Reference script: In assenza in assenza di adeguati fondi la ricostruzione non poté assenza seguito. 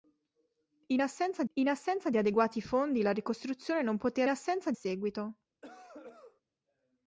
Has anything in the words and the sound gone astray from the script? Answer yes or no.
yes